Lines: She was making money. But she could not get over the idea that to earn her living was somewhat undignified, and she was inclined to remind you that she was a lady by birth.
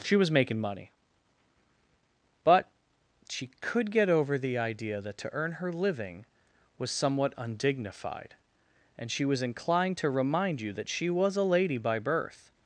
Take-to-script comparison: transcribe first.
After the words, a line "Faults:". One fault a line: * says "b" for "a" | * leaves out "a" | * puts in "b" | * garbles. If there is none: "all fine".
She was making money. But she could get over the idea that to earn her living was somewhat undignified, and she was inclined to remind you that she was a lady by birth.
Faults:
* leaves out "not"